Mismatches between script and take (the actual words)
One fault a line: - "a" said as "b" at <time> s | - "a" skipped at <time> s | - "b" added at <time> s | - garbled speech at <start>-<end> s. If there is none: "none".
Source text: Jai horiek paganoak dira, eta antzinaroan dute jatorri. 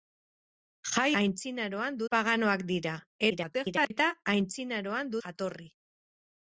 - "horiek" said as "antzinaroan" at 1.2 s
- garbled speech at 3.3-3.9 s
- "dute" skipped at 5.2 s